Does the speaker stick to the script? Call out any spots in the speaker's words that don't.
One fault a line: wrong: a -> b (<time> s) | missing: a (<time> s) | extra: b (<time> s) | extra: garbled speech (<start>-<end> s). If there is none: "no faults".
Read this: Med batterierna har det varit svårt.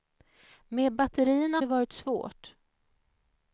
missing: har (1.6 s)